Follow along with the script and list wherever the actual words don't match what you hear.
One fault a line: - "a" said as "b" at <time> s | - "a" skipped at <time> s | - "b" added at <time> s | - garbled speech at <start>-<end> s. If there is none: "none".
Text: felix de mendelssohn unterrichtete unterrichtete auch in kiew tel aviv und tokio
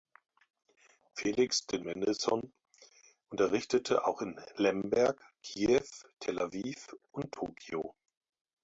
- "unterrichtete" skipped at 4.1 s
- "lemberg" added at 4.6 s